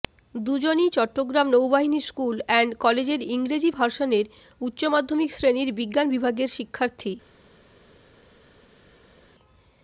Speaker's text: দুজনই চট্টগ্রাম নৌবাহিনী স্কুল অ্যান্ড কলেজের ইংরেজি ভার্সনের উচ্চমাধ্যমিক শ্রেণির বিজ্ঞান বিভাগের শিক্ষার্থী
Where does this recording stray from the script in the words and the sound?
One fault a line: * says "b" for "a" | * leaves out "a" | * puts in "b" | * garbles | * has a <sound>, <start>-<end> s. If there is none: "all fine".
all fine